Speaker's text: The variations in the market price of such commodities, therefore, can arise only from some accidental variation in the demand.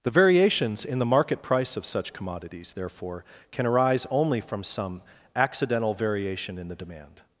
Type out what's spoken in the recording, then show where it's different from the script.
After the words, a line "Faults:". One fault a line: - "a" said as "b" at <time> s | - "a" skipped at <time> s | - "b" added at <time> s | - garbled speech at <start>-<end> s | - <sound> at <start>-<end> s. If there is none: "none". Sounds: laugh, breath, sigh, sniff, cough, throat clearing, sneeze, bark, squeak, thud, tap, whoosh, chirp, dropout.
The variations in the market price of such commodities, therefore, can arise only from some accidental variation in the demand.
Faults:
none